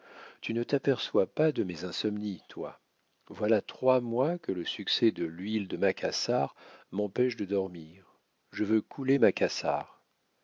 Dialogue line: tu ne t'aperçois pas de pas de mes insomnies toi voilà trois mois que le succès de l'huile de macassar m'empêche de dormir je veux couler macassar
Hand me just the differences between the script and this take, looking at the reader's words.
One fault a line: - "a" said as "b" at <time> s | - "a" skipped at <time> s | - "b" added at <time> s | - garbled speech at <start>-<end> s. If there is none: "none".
- "pas de" skipped at 1.6 s